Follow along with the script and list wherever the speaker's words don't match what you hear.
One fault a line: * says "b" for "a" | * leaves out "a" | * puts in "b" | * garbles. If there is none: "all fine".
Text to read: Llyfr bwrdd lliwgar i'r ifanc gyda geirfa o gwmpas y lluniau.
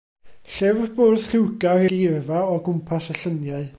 * leaves out "i'r ifanc gyda"